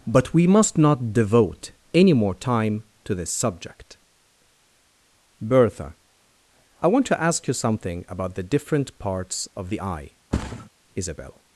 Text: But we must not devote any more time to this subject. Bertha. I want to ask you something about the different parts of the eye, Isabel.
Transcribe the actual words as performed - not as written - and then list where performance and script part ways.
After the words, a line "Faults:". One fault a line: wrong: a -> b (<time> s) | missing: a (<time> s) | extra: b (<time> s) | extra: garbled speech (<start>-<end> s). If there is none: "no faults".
But we must not devote any more time to this subject. Bertha. I want to ask you something about the different parts of the eye, Isabel.
Faults:
no faults